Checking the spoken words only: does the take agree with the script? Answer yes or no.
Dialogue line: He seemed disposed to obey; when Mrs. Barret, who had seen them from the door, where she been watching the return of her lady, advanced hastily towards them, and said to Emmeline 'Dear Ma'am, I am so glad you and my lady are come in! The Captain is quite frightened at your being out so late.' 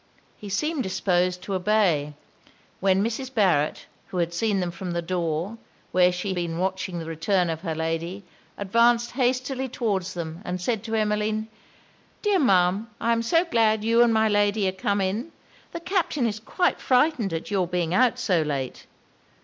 yes